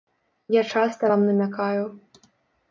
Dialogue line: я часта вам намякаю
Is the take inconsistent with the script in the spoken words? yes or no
no